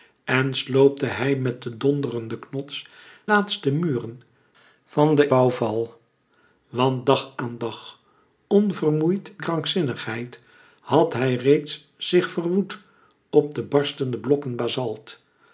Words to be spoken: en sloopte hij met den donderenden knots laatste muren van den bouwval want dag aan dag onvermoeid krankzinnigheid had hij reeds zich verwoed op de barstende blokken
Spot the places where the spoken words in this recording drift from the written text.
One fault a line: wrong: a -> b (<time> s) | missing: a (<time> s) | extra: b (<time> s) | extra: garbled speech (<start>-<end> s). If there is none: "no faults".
no faults